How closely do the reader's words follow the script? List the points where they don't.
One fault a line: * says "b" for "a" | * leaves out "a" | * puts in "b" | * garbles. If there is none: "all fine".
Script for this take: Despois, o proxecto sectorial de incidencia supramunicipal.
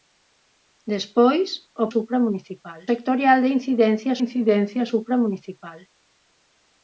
* says "supramunicipal" for "proxecto"
* puts in "incidencia"